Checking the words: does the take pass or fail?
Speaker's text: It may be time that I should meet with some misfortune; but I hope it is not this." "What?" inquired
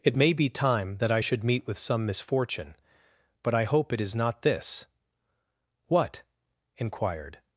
pass